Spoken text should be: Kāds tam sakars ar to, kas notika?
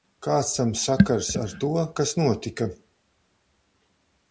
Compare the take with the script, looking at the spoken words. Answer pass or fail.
pass